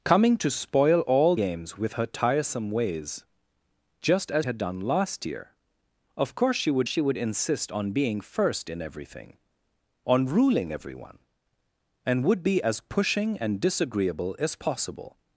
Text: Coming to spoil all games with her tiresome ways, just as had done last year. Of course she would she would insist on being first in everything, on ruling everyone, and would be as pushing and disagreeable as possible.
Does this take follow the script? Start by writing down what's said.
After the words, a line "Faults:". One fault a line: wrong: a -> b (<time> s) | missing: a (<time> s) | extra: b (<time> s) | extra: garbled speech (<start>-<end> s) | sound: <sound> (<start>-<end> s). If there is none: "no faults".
Coming to spoil all games with her tiresome ways, just as had done last year. Of course she would she would insist on being first in everything, on ruling everyone, and would be as pushing and disagreeable as possible.
Faults:
no faults